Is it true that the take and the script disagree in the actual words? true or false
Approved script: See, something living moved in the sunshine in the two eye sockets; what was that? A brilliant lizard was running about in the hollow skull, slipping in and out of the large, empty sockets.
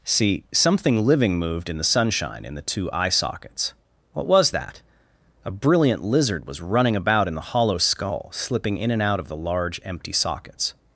false